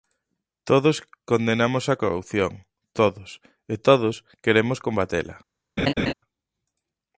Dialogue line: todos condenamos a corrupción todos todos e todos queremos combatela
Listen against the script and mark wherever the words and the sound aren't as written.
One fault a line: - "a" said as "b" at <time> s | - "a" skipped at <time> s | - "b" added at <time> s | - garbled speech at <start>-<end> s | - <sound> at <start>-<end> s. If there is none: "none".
- "todos" skipped at 3.4 s
- laugh at 5.8-6.1 s